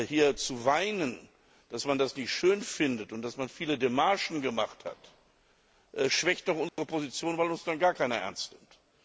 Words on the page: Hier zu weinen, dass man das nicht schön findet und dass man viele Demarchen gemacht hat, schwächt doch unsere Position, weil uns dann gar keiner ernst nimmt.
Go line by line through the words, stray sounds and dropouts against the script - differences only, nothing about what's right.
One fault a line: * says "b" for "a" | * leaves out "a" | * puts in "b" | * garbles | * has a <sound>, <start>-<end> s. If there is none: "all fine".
* has a dropout, 6.7-6.8 s